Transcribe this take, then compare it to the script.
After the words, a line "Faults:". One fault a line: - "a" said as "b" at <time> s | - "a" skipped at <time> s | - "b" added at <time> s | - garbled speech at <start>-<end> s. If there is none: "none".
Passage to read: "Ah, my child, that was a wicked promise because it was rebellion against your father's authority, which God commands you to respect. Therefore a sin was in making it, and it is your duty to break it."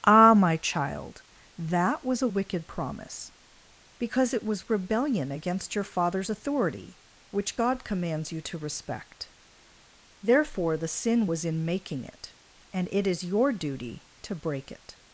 "Ah, my child, that was a wicked promise because it was rebellion against your father's authority, which God commands you to respect. Therefore the sin was in making it, and it is your duty to break it."
Faults:
- "a" said as "the" at 10.8 s